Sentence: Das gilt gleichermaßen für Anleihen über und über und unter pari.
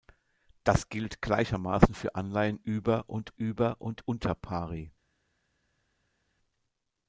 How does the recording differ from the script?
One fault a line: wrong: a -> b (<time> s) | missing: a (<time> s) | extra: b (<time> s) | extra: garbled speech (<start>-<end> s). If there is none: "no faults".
no faults